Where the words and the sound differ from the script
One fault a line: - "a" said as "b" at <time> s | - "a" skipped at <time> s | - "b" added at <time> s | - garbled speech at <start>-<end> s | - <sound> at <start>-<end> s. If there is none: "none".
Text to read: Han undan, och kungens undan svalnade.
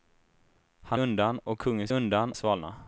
none